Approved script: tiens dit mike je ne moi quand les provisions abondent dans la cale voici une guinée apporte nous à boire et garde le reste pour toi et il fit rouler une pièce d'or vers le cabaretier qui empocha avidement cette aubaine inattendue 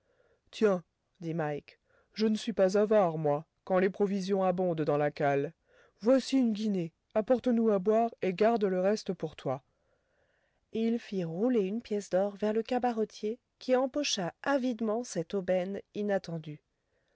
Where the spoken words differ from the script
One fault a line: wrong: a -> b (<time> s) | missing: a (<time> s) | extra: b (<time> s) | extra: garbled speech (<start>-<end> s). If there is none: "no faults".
extra: suis pas avare (2.4 s)